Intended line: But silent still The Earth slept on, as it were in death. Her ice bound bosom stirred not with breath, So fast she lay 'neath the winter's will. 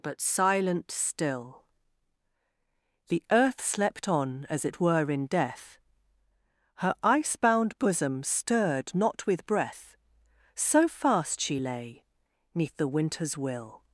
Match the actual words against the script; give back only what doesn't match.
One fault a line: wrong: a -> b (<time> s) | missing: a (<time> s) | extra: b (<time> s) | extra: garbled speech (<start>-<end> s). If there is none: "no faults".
no faults